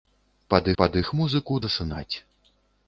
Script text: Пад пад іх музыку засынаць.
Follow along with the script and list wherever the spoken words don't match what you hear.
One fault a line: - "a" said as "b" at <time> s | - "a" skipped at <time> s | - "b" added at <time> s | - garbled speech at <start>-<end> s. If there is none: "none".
none